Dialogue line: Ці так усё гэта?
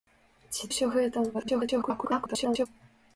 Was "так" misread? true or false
true